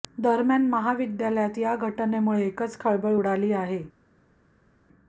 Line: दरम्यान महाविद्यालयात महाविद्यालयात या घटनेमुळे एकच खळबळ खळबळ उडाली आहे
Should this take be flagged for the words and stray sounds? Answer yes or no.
yes